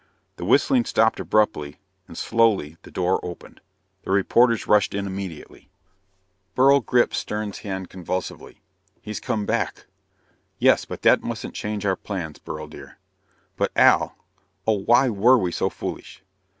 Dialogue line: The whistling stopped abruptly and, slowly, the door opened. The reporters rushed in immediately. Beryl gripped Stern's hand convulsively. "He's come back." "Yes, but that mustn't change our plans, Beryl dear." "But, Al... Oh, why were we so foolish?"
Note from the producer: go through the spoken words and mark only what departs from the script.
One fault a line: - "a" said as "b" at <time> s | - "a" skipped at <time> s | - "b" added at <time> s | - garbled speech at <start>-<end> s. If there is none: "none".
none